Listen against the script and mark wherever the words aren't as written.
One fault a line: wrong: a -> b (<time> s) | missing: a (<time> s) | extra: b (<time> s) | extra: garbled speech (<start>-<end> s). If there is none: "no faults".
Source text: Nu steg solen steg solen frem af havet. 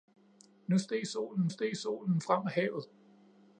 no faults